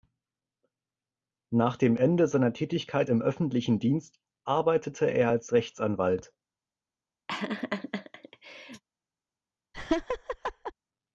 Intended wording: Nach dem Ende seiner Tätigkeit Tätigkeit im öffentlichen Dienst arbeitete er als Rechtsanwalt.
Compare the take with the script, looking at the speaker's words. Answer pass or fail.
fail